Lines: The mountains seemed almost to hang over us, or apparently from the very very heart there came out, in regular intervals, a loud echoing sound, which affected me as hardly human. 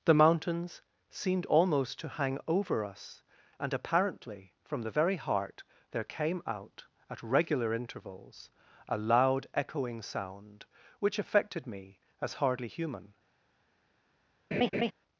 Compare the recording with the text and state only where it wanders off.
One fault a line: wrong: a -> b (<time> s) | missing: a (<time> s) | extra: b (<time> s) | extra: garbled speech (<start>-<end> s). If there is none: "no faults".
wrong: or -> and (3.6 s)
missing: very (5.2 s)
wrong: in -> at (7.1 s)